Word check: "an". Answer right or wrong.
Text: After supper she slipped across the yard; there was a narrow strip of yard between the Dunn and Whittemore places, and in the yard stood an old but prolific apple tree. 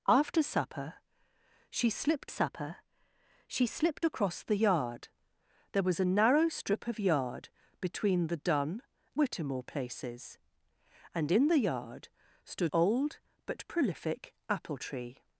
wrong